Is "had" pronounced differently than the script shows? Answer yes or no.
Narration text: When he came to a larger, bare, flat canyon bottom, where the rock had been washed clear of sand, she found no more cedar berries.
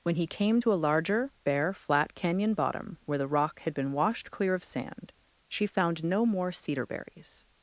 no